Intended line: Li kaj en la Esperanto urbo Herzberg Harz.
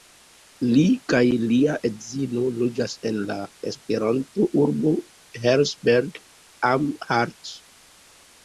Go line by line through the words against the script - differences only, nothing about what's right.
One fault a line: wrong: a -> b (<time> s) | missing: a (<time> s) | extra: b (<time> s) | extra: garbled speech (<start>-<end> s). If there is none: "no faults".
extra: lia edzino loĝas (1.5 s)
extra: am (6.7 s)